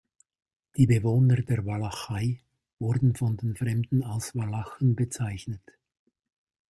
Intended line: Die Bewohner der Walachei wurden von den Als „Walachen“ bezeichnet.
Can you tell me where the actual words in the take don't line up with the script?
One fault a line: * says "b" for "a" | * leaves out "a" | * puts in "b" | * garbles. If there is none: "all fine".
* puts in "Fremden"